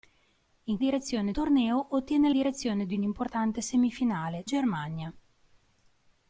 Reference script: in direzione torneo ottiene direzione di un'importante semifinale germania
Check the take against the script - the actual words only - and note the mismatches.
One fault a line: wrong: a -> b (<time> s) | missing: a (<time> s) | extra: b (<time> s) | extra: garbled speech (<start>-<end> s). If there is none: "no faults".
no faults